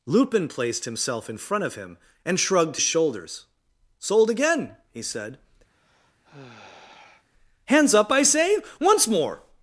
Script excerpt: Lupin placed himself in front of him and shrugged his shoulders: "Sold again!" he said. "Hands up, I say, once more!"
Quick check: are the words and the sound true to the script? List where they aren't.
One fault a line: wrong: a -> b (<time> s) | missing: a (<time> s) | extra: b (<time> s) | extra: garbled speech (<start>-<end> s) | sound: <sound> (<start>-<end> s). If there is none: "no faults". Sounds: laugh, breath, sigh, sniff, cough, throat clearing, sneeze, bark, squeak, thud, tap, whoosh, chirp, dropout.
missing: his (2.8 s)
sound: sigh (5.7-7.3 s)